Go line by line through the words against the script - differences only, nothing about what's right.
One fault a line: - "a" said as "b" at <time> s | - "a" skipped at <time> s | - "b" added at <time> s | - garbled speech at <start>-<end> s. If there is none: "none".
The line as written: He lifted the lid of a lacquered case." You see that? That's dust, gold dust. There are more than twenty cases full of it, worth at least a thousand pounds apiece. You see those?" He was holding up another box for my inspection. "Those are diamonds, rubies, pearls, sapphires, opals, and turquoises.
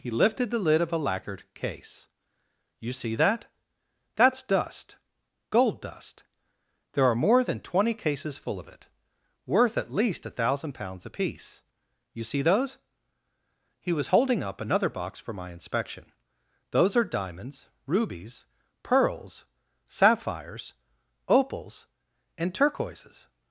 none